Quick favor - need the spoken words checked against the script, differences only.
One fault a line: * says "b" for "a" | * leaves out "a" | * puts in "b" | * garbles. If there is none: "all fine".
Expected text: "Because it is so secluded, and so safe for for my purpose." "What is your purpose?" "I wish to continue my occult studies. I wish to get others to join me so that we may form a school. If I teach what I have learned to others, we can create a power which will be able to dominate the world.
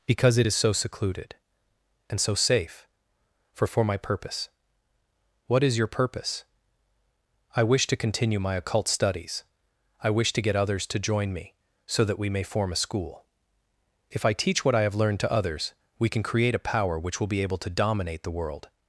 all fine